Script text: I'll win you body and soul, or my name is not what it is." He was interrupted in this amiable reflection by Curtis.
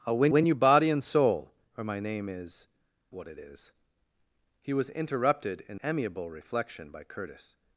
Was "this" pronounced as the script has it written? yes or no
no